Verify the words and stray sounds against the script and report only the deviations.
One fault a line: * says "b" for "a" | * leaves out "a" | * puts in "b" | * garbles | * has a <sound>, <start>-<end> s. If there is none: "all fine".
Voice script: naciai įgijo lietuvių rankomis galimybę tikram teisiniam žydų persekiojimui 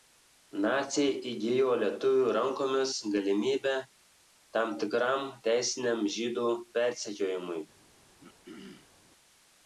* puts in "tam"
* has a throat clearing, 8.2-8.9 s